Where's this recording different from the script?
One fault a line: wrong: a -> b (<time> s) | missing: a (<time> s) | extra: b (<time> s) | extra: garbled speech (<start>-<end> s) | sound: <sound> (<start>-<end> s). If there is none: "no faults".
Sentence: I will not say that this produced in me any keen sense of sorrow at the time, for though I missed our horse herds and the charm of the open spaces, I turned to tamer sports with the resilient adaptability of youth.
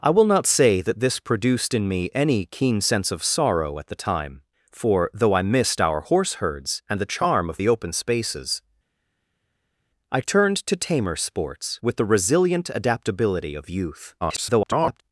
extra: garbled speech (14.2-15.0 s)